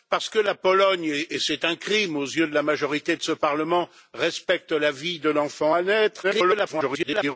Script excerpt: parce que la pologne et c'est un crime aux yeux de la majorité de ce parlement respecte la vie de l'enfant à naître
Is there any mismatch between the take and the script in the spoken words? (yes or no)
yes